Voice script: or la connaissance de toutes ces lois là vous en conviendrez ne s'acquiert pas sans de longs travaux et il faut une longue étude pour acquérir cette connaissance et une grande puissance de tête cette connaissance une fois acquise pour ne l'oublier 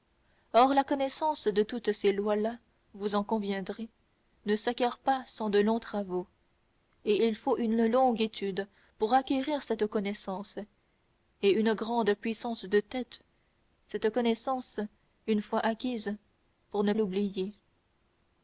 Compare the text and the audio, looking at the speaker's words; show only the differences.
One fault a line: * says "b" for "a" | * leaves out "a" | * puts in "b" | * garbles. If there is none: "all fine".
all fine